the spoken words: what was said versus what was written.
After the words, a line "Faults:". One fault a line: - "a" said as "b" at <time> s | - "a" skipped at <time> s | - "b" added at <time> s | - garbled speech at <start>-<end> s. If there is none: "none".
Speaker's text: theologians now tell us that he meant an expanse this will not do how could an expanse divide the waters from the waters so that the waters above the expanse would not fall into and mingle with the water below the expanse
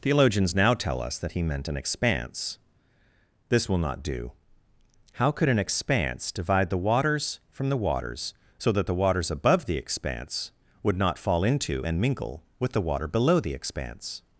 theologians now tell us that he meant an expanse this will not do how could an expanse divide the waters from the waters so that the waters above the expanse would not fall into and mingle with the water below the expanse
Faults:
none